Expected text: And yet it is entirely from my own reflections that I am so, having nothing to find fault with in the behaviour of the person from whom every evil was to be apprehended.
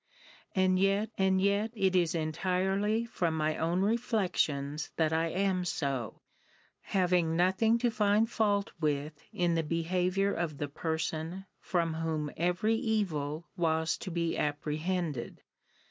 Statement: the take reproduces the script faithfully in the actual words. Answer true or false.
false